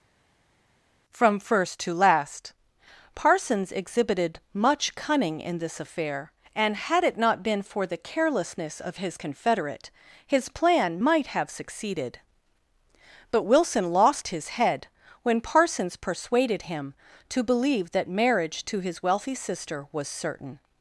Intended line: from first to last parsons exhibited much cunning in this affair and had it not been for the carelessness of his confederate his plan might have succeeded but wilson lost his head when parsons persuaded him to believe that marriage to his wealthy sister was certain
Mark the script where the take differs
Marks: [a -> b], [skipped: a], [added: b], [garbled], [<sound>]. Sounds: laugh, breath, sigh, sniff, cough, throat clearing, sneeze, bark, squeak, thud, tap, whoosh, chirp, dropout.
from first to last parsons exhibited much cunning in this affair and had it not been for the carelessness of his confederate his plan might have succeeded but wilson lost his head when parsons persuaded him to believe that marriage to his wealthy sister was certain